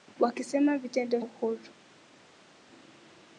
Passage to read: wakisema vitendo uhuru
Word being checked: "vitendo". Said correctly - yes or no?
yes